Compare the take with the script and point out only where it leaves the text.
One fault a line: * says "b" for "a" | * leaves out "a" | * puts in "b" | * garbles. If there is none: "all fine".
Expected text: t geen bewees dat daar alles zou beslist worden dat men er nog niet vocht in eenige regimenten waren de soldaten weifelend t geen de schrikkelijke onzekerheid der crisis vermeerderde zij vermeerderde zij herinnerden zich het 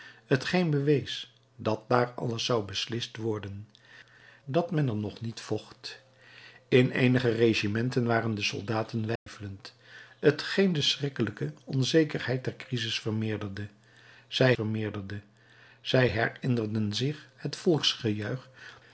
all fine